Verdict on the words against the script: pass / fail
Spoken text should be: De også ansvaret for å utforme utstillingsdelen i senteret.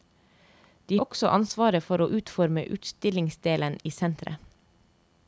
pass